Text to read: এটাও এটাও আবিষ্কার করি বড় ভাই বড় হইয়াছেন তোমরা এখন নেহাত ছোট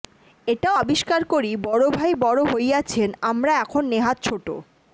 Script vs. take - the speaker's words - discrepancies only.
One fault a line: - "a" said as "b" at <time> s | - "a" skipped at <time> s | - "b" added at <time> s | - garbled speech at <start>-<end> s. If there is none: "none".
- "এটাও" skipped at 0.8 s
- "তোমরা" said as "আমরা" at 3.2 s